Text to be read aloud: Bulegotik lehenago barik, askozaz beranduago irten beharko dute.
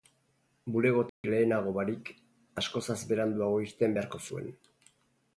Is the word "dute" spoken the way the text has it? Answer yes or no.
no